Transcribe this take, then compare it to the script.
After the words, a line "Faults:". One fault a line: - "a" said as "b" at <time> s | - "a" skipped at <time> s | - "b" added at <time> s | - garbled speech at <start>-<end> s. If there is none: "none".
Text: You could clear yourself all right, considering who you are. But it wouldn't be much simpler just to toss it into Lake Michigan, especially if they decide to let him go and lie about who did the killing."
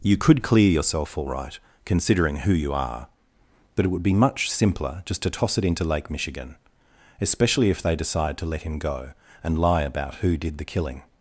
You could clear yourself all right, considering who you are. But it would be much simpler just to toss it into Lake Michigan, especially if they decide to let him go and lie about who did the killing."
Faults:
- "wouldn't" said as "would" at 3.9 s